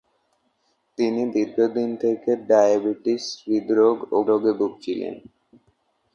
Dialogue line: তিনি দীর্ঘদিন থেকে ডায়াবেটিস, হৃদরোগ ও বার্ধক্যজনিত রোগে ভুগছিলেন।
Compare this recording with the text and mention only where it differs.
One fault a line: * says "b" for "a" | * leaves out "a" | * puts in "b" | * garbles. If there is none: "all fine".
* leaves out "বার্ধক্যজনিত"